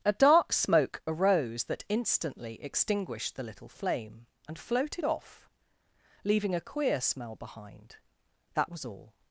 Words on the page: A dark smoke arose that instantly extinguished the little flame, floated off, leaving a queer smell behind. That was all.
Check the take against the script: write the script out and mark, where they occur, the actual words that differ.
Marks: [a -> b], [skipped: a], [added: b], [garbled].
A dark smoke arose that instantly extinguished the little flame, [added: and] floated off, leaving a queer smell behind. That was all.